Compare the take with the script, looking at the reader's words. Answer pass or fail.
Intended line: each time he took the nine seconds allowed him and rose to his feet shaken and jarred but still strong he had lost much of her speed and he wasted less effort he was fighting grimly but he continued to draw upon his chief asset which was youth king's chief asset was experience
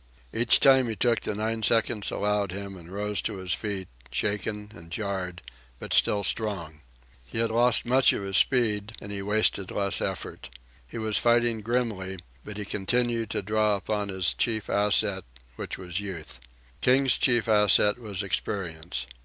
fail